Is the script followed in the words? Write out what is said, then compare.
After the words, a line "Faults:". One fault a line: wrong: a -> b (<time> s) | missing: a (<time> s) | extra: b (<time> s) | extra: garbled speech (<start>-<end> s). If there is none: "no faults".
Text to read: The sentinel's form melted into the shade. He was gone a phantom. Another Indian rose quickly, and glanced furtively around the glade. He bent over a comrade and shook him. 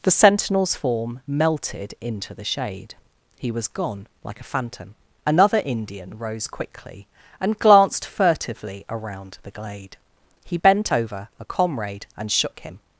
The sentinel's form melted into the shade. He was gone like a phantom. Another Indian rose quickly, and glanced furtively around the glade. He bent over a comrade and shook him.
Faults:
extra: like (4.2 s)